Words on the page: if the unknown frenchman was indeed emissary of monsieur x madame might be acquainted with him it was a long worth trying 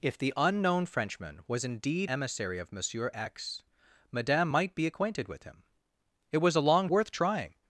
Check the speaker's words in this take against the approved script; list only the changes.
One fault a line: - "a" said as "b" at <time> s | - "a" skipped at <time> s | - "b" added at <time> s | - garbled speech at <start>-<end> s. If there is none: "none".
none